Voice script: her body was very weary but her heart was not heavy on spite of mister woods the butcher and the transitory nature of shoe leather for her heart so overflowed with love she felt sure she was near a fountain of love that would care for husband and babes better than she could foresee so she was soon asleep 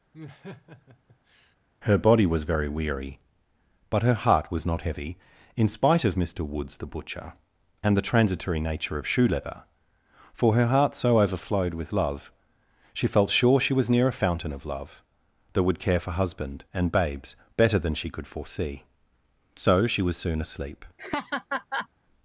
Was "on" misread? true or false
true